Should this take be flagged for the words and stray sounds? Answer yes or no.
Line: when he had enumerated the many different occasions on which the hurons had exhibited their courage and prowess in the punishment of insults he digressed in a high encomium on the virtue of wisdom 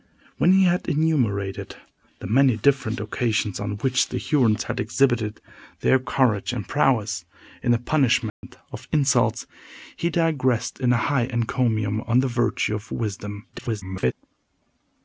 yes